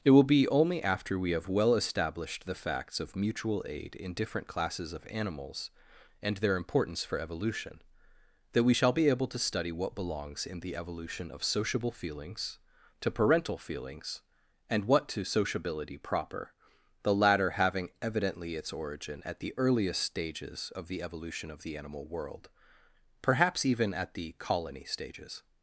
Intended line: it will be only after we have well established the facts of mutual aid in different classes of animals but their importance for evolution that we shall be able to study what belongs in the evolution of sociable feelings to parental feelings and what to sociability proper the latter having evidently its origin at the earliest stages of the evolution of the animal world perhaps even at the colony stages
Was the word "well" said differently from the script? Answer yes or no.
no